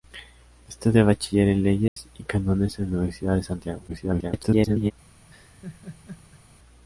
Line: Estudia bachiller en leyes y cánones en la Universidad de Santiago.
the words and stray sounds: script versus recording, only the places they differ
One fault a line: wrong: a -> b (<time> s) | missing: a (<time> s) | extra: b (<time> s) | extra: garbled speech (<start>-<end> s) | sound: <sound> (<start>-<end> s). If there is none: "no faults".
sound: dropout (1.9-2.0 s)
extra: garbled speech (3.9-4.9 s)
sound: laugh (5.3-6.4 s)